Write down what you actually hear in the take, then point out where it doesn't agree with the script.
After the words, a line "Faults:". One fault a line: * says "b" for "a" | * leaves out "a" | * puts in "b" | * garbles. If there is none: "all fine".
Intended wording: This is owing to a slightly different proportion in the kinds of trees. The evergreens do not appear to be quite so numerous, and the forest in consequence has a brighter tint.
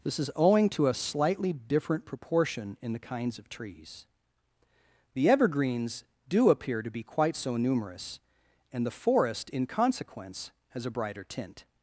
This is owing to a slightly different proportion in the kinds of trees. The evergreens do appear to be quite so numerous, and the forest in consequence has a brighter tint.
Faults:
* leaves out "not"